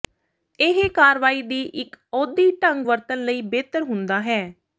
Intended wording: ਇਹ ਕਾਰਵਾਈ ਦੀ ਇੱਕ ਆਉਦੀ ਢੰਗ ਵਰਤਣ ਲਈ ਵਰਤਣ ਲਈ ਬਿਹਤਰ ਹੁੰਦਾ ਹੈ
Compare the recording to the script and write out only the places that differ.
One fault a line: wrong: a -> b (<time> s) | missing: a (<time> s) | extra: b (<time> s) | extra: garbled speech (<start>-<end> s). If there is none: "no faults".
missing: ਵਰਤਣ ਲਈ (3.4 s)